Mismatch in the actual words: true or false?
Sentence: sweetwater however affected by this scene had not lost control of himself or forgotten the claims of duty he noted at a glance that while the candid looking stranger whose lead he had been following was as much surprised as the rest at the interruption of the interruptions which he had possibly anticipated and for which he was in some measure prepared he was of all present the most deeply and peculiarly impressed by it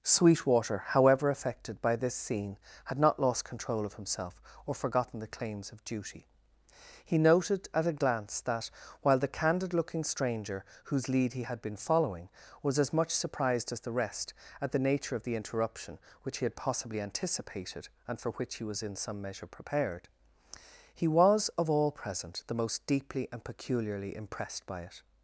true